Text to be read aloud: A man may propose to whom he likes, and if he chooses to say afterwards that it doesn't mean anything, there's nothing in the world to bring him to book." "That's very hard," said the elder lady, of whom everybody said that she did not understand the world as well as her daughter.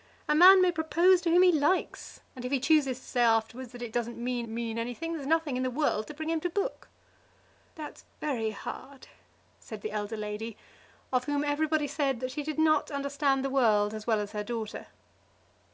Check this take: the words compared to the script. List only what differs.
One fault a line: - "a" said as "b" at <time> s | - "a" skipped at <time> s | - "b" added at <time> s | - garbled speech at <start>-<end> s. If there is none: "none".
- "mean" added at 4.5 s